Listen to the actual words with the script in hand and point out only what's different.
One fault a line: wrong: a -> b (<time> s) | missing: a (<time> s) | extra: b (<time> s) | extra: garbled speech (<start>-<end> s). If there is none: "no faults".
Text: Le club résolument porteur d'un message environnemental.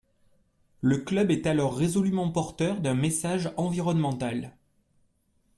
extra: est alors (1.3 s)